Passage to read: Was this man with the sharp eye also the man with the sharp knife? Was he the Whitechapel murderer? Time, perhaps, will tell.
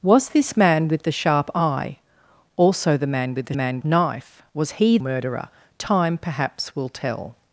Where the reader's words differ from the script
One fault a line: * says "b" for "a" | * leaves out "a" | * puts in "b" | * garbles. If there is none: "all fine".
* says "man" for "sharp"
* leaves out "the Whitechapel"